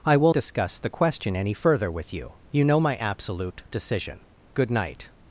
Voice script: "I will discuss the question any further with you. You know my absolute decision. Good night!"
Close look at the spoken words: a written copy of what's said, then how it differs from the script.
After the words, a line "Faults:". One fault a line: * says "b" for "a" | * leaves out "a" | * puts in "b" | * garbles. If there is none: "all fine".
"I will discuss the question any further with you. You know my absolute decision. Good night!"
Faults:
all fine